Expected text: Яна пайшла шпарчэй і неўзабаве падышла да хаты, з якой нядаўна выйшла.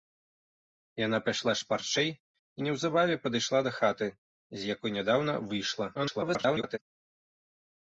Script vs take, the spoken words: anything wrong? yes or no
yes